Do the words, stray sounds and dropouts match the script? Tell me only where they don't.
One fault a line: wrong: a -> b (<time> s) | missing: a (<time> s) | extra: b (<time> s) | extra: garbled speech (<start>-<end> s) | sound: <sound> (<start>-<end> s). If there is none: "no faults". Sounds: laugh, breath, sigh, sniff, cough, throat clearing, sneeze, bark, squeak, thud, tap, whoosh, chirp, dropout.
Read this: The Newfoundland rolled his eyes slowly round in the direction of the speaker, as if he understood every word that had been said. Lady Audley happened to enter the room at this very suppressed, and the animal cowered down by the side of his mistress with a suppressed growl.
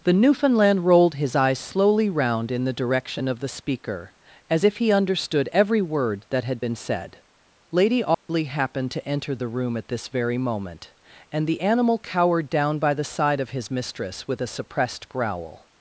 sound: dropout (8.1-8.3 s)
wrong: suppressed -> moment (10.4 s)